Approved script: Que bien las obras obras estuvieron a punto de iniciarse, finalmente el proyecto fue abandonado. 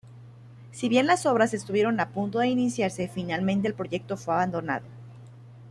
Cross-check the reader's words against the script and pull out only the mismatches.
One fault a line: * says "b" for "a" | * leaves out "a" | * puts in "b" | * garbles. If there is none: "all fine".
* says "Si" for "Que"
* leaves out "obras"